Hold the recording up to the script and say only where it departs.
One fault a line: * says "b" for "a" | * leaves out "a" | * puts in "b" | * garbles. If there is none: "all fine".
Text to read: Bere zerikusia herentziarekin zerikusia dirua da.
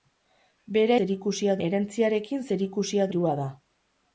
all fine